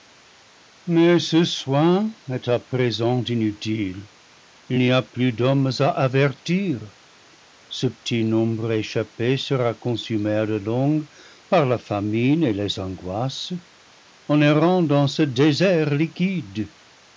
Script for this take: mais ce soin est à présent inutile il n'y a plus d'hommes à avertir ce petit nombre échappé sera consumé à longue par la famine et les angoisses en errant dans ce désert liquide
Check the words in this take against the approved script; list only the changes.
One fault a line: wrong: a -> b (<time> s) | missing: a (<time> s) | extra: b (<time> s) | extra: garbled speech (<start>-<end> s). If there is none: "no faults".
extra: la (10.5 s)